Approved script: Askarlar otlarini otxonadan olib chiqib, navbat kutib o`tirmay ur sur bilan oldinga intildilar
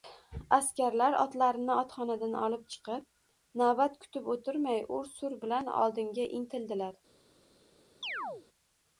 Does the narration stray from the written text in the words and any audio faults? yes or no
yes